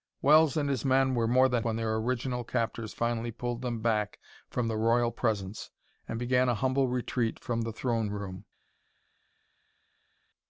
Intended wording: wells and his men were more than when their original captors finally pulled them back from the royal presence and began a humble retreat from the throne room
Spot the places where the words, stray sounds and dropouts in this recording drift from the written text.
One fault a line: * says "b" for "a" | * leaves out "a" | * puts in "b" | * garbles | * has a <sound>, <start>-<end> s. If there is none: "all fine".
all fine